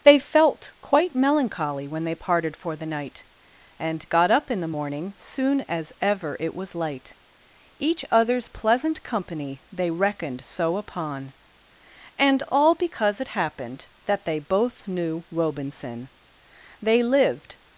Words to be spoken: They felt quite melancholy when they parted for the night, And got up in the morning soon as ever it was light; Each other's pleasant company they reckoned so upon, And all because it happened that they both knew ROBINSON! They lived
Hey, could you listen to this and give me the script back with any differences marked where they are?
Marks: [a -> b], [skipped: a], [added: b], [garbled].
They felt quite melancholy when they parted for the night, And got up in the morning soon as ever it was light; Each other's pleasant company they reckoned so upon, And all because it happened that they both knew ROBINSON! They lived